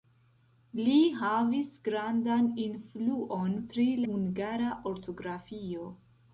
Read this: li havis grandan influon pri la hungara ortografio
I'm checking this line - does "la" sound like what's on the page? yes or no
no